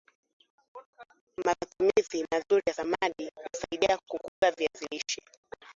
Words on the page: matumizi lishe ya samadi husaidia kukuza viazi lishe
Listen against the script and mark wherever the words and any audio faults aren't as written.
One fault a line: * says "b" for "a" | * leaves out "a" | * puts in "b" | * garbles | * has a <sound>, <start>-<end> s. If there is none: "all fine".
* says "mazuri" for "lishe"
* has a dropout, 4.3-4.4 s